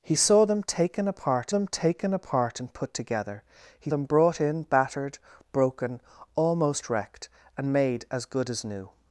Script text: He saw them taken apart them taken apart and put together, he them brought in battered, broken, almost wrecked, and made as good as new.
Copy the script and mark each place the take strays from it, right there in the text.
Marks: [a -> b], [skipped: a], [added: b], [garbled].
He saw them taken apart them taken apart and put together, he them brought in battered, broken, almost wrecked, and made as good as new.